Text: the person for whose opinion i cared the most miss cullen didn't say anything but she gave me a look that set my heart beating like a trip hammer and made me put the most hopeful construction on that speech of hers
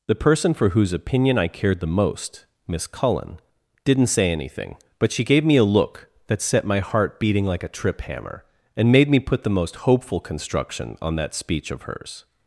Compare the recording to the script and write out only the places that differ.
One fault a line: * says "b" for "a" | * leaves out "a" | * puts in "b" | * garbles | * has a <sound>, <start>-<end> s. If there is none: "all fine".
all fine